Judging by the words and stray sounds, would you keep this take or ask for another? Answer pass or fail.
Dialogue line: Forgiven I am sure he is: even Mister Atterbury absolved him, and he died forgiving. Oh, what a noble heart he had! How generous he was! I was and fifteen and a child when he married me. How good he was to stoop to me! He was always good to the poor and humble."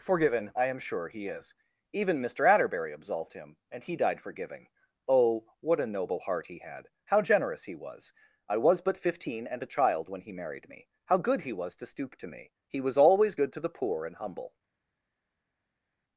fail